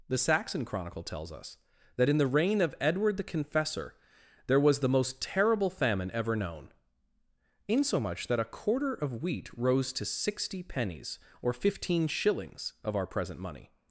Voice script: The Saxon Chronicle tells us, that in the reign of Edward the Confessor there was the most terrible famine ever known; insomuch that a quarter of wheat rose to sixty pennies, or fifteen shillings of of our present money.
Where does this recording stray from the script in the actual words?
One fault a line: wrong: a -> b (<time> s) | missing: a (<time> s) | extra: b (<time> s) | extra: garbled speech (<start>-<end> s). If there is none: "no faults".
missing: of (12.9 s)